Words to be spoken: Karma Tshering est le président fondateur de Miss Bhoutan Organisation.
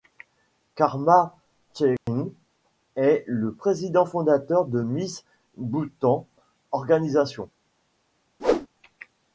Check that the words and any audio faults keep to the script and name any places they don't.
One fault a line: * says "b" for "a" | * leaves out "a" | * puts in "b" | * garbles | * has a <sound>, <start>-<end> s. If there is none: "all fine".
* has a dropout, 2.0-2.1 s
* has a whoosh, 8.4-8.7 s